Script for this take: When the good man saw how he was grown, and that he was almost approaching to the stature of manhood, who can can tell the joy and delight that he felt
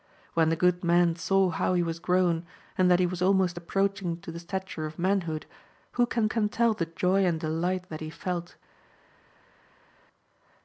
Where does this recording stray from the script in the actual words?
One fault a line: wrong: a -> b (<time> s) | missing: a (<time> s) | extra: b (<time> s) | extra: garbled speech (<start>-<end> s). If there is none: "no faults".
no faults